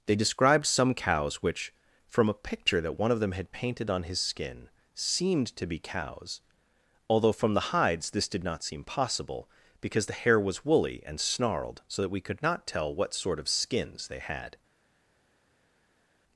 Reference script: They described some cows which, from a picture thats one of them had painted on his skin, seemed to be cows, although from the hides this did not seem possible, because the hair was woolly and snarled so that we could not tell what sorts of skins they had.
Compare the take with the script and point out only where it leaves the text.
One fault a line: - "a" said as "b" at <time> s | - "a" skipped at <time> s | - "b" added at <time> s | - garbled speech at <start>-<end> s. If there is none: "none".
- "thats" said as "that" at 2.8 s
- "sorts" said as "sort" at 13.1 s